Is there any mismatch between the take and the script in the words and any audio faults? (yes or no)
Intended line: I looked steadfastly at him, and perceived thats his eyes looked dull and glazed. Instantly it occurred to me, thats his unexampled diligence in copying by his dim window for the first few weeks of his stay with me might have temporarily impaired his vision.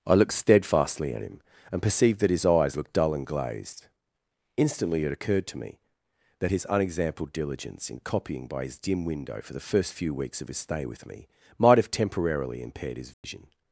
yes